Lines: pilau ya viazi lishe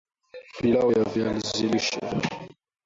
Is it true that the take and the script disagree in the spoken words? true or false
false